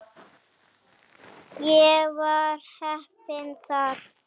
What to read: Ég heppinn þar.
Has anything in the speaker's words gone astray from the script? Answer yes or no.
yes